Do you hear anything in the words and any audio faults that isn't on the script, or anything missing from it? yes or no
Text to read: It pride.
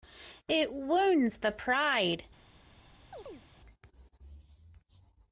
yes